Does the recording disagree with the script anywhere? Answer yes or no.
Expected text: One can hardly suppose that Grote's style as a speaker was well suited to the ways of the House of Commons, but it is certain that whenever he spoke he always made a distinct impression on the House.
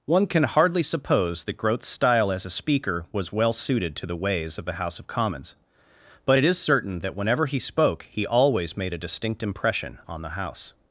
no